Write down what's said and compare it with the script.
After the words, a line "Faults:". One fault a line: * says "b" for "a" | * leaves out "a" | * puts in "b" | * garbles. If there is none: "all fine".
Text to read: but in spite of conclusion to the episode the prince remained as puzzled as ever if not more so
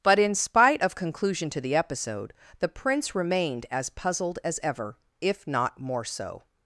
but in spite of conclusion to the episode the prince remained as puzzled as ever if not more so
Faults:
all fine